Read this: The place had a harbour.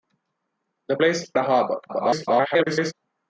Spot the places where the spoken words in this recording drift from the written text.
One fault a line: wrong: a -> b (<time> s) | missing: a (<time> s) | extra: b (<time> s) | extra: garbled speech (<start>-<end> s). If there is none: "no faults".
missing: had (1.3 s)
extra: garbled speech (1.9-2.9 s)